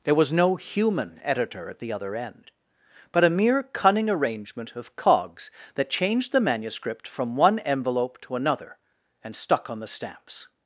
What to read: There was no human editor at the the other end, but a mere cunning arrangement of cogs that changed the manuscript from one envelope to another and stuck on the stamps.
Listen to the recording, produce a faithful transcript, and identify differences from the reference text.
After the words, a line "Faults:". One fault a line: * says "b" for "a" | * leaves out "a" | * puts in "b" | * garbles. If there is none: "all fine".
There was no human editor at the other end, but a mere cunning arrangement of cogs that changed the manuscript from one envelope to another and stuck on the stamps.
Faults:
* leaves out "the"